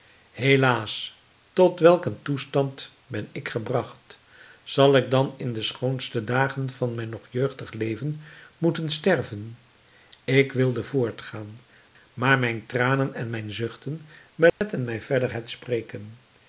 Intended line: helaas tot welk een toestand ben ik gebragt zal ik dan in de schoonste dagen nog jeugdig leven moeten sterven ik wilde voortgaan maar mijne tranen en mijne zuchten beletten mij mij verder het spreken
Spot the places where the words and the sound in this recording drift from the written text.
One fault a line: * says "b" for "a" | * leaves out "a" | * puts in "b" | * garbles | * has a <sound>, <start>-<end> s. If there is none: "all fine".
* puts in "van mijn"
* has a dropout, 14.5-14.6 s
* leaves out "mij"